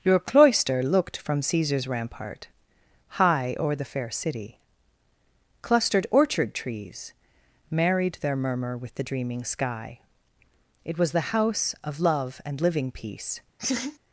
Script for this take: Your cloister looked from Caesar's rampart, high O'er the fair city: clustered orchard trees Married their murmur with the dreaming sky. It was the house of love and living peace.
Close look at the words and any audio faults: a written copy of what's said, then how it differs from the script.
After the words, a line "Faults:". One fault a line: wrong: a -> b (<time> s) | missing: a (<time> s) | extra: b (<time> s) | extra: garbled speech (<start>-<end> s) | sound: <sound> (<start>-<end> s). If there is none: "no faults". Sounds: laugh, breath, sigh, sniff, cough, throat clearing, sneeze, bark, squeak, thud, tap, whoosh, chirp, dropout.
Your cloister looked from Caesar's rampart, high O'er the fair city: clustered orchard trees Married their murmur with the dreaming sky. It was the house of love and living peace.
Faults:
sound: laugh (13.6-14.0 s)